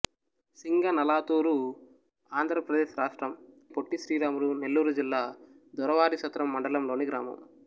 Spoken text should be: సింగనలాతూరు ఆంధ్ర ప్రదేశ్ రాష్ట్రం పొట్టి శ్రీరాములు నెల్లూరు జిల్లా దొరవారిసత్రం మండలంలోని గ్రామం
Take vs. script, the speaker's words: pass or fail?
pass